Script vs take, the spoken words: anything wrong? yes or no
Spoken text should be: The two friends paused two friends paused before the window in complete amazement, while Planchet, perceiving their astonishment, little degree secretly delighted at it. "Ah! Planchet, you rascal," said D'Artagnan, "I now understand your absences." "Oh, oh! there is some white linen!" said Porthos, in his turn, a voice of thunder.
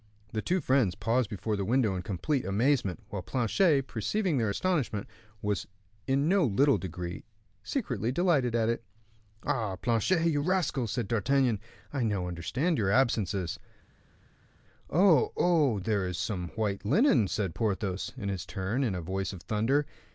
yes